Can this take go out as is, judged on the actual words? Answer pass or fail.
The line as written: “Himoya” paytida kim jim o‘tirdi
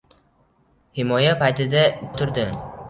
fail